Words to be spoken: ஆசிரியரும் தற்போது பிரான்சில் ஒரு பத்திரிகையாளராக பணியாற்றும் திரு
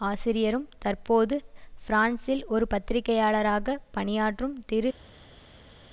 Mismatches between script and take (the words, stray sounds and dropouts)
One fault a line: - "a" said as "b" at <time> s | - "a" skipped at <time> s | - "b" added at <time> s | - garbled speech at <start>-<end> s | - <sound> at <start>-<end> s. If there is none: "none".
none